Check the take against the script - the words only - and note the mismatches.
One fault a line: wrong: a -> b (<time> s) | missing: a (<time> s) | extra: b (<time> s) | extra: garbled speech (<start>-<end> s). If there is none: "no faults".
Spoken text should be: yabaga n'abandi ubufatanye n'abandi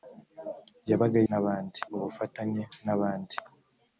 no faults